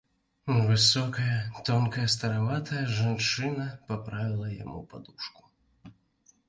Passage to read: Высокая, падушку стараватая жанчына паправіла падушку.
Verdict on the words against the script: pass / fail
fail